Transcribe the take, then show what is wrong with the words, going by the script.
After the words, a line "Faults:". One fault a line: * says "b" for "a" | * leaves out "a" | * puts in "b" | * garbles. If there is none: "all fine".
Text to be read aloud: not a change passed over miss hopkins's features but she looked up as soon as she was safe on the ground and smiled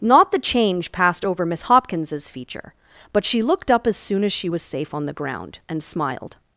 not the change passed over miss hopkins's feature but she looked up as soon as she was safe on the ground and smiled
Faults:
* says "the" for "a"
* says "feature" for "features"